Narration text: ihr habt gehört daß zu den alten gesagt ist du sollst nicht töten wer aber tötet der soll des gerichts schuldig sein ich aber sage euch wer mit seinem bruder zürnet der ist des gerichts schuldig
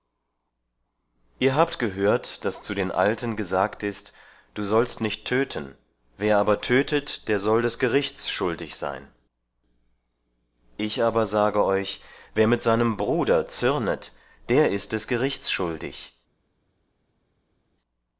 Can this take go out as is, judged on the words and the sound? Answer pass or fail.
pass